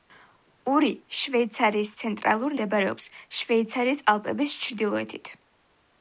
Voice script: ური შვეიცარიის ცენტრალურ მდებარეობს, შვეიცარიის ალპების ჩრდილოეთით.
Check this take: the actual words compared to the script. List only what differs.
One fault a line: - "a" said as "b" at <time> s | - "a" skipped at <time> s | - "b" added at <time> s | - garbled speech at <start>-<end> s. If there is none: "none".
none